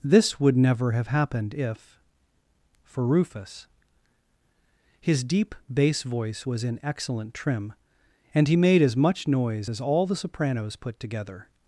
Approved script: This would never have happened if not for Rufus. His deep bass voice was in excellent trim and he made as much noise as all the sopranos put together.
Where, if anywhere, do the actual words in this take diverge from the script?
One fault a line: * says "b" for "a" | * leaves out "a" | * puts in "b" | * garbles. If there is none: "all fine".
* leaves out "not"